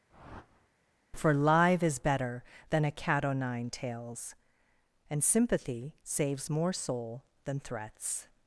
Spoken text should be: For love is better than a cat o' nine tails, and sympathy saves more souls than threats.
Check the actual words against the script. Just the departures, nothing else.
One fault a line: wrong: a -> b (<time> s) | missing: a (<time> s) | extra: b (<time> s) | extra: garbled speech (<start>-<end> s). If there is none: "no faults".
wrong: love -> live (1.3 s)
wrong: souls -> soul (6.7 s)